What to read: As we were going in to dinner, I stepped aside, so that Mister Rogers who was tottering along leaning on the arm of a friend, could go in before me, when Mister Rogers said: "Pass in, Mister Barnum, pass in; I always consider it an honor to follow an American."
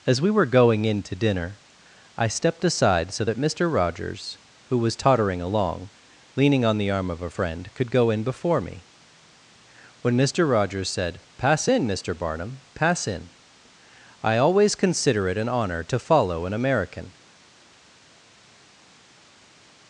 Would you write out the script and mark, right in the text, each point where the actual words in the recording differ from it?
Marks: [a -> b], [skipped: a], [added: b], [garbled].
As we were going in to dinner, I stepped aside, so that Mister Rogers who was tottering along leaning on the arm of a friend, could go in before me, when Mister Rogers said: "Pass in, Mister Barnum, pass in; I always consider it an honor to follow an American."